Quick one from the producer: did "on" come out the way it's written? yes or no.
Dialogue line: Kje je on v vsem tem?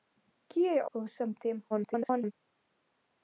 no